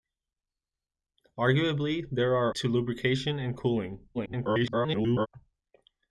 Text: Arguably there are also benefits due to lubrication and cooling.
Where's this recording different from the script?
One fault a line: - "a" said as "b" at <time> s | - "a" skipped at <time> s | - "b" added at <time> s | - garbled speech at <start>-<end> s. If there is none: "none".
- "also benefits due" skipped at 2.5 s
- garbled speech at 4.1-5.3 s